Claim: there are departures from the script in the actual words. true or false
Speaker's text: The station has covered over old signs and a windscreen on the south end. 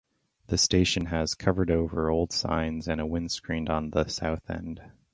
false